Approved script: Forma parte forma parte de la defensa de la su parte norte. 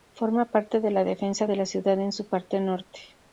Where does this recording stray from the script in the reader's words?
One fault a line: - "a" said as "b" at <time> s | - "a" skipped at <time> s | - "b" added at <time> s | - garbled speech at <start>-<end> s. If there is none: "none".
- "forma parte" skipped at 0.8 s
- "ciudad en" added at 1.6 s